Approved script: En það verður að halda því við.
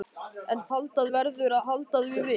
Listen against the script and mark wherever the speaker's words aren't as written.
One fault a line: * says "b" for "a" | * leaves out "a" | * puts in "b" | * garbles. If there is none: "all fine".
* says "halda" for "það"